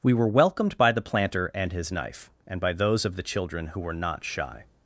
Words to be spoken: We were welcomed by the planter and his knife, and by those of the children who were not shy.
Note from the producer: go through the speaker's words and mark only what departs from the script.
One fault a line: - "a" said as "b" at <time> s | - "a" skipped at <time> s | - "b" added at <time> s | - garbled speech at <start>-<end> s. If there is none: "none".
none